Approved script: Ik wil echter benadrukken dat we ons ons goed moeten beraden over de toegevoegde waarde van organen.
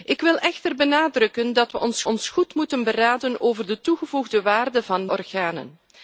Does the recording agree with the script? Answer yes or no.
yes